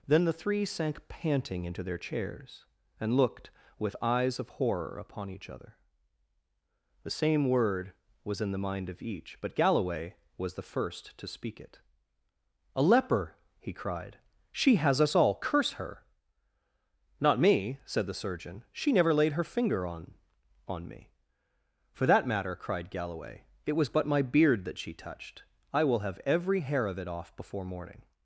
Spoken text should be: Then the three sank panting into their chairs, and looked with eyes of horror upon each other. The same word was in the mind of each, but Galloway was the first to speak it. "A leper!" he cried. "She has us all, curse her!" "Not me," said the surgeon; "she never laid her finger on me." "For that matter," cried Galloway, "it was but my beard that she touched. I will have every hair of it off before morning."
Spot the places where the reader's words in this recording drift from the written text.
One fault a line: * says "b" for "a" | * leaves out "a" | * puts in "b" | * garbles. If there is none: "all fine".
* puts in "on"